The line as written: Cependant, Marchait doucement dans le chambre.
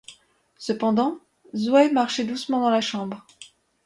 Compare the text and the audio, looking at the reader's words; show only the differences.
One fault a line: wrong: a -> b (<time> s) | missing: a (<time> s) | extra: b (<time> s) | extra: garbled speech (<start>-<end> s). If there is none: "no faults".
extra: Zoé (1.6 s)
wrong: le -> la (2.7 s)